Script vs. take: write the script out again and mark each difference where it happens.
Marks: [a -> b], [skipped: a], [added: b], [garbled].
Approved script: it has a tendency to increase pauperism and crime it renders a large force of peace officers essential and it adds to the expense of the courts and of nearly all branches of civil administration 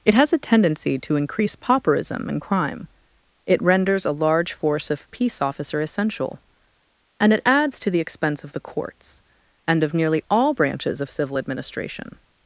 it has a tendency to increase pauperism and crime it renders a large force of peace [officers -> officer] essential and it adds to the expense of the courts and of nearly all branches of civil administration